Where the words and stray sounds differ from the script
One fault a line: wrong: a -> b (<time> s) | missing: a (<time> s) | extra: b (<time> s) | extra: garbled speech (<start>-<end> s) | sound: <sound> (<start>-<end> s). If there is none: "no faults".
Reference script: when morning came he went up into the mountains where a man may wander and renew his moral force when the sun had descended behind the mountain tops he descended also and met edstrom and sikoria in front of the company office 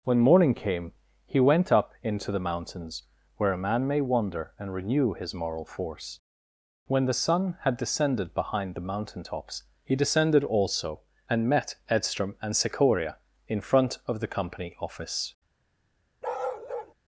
sound: bark (16.2-16.9 s)